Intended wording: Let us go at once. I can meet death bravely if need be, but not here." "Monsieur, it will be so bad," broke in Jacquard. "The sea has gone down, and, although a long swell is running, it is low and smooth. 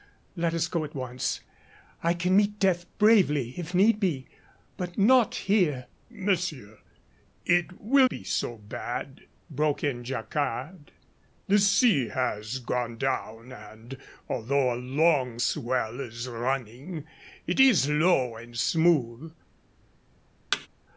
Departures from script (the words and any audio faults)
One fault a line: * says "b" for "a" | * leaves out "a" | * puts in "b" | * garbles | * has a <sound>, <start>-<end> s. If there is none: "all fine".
* has a thud, 20.5-20.7 s